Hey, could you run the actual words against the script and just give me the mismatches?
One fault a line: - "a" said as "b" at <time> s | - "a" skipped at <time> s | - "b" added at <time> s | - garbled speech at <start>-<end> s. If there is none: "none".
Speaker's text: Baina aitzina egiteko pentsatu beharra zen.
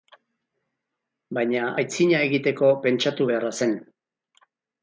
none